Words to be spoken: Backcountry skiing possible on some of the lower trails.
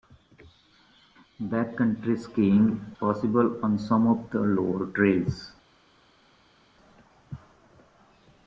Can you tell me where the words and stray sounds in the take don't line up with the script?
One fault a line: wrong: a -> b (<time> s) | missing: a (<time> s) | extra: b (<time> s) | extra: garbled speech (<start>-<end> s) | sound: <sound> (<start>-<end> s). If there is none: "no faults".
no faults